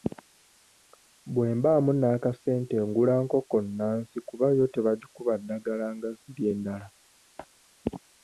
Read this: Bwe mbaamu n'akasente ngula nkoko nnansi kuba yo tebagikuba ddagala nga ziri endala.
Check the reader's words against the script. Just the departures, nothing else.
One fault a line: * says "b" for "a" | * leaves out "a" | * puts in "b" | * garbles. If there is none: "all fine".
all fine